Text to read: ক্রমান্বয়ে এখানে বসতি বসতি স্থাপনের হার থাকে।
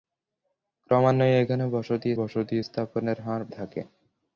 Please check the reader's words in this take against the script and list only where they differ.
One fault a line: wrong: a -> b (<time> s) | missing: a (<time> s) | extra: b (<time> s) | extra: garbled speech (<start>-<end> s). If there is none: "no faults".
no faults